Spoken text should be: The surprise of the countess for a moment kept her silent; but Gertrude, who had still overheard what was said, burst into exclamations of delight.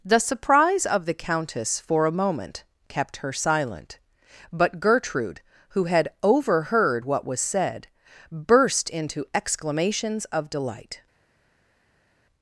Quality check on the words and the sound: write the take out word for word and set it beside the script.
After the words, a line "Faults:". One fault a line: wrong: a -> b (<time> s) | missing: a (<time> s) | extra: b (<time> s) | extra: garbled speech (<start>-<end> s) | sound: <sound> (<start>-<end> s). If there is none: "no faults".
The surprise of the countess for a moment kept her silent; but Gertrude, who had overheard what was said, burst into exclamations of delight.
Faults:
missing: still (6.1 s)